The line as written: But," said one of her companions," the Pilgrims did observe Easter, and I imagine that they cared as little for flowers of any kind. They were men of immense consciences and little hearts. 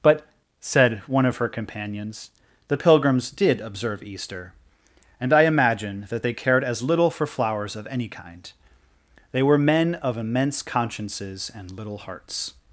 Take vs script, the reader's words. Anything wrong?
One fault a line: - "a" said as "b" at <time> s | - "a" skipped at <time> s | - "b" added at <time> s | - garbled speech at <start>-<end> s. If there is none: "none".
none